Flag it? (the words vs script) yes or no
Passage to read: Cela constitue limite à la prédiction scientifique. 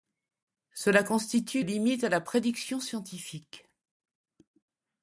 no